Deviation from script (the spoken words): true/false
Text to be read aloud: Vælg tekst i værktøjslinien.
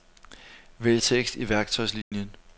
false